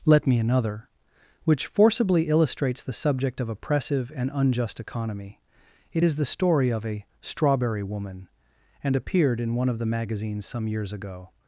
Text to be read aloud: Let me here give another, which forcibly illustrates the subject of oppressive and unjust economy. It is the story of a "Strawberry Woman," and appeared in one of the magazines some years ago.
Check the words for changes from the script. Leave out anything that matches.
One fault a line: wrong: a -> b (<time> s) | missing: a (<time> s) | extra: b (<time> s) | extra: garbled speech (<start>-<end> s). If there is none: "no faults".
missing: here give (0.4 s)